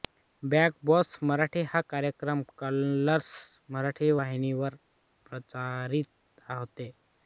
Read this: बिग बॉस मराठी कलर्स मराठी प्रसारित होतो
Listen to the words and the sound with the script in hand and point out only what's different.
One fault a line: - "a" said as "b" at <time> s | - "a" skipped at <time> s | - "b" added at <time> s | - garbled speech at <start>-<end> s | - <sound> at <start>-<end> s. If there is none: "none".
- "हा कार्यक्रम" added at 1.7 s
- "वाहिनीवर" added at 4.2 s